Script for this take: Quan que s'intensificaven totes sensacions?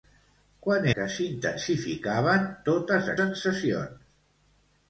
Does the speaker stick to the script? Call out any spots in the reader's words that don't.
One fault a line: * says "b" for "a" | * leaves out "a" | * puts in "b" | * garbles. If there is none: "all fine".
all fine